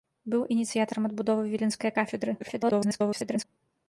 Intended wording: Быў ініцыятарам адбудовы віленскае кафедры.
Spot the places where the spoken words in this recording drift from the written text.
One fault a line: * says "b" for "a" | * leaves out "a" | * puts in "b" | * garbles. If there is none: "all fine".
* garbles